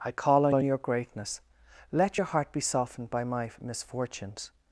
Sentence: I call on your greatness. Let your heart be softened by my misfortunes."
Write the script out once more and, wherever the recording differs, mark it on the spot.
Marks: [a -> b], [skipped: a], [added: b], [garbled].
I call on [added: on] your greatness. Let your heart be softened by my misfortunes."